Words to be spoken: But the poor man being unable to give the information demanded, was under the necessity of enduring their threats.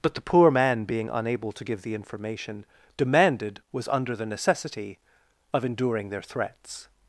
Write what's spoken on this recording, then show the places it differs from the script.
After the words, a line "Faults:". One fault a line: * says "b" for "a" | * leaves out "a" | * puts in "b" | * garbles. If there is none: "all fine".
But the poor man being unable to give the information demanded, was under the necessity of enduring their threats.
Faults:
all fine